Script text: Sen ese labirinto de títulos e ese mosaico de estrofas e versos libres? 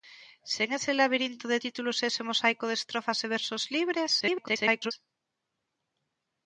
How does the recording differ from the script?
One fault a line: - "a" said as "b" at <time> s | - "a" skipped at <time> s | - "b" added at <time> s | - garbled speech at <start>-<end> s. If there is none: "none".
- garbled speech at 4.2-4.9 s